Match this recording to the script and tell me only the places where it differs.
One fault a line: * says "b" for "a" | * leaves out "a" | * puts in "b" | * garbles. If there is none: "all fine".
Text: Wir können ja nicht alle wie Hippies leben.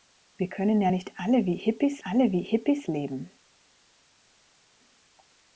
* puts in "alle wie Hippies"